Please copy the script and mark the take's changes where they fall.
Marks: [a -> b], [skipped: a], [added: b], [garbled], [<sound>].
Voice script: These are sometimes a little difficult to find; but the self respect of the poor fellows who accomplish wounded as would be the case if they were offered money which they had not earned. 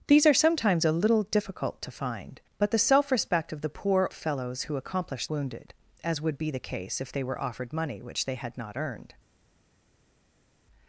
These are sometimes a little difficult to find; but the self respect of the poor fellows who accomplish wounded as would be the case if they were offered money which they had not earned.